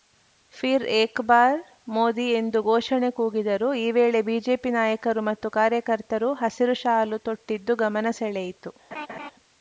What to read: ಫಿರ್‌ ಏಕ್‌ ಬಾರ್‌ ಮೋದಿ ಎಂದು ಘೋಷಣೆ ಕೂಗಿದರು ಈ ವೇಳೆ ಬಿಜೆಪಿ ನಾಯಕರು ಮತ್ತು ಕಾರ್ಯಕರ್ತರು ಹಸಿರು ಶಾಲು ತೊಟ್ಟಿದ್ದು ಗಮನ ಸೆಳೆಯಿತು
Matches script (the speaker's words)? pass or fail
pass